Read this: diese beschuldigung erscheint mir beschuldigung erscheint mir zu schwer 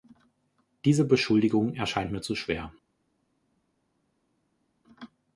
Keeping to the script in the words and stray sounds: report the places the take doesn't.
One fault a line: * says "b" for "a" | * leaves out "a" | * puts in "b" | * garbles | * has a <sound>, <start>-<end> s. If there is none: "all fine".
* leaves out "beschuldigung erscheint mir"